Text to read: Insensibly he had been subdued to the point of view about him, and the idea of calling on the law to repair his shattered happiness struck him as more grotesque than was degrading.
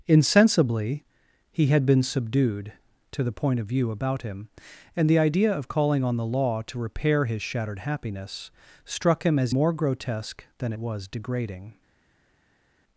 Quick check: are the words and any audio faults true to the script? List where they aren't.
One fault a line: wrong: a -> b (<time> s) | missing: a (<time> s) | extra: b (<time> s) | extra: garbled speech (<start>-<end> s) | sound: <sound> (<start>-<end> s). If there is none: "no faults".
no faults